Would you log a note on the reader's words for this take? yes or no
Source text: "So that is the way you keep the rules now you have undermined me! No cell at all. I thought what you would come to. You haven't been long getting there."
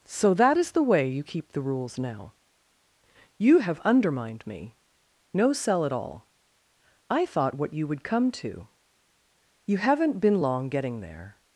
no